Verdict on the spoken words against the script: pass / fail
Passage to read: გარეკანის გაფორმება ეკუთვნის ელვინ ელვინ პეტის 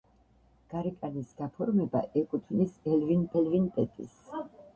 pass